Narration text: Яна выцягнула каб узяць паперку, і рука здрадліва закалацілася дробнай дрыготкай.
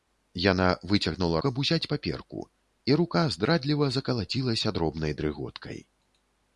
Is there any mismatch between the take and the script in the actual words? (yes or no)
no